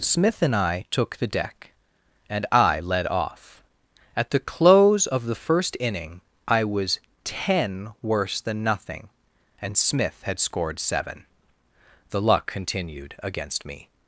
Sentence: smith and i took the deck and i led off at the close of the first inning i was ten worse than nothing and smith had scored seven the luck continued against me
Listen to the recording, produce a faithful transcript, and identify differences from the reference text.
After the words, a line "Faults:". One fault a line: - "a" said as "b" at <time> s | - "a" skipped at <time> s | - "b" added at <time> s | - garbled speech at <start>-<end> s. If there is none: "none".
smith and i took the deck and i led off at the close of the first inning i was ten worse than nothing and smith had scored seven the luck continued against me
Faults:
none